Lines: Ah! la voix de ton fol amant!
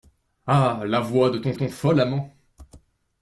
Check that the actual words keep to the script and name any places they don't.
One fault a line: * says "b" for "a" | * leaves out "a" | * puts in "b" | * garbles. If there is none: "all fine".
* puts in "ton"